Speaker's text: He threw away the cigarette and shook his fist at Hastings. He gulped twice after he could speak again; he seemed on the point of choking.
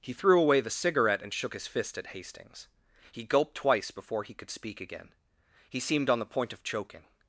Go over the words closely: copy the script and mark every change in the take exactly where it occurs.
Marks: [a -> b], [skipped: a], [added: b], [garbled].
He threw away the cigarette and shook his fist at Hastings. He gulped twice [after -> before] he could speak again; he seemed on the point of choking.